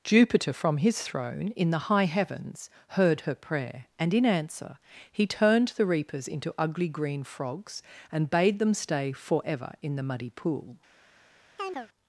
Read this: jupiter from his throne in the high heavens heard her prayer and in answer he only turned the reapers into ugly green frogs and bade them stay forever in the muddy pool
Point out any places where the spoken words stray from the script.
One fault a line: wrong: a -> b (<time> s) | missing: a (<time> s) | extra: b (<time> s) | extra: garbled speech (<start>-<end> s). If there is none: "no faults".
missing: only (5.3 s)